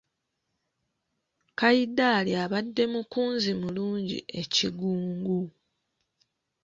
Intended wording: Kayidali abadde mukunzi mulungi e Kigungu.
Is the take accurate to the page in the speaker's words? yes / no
yes